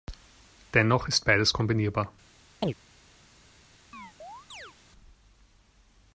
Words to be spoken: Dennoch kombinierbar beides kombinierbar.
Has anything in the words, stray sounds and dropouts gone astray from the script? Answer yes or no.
yes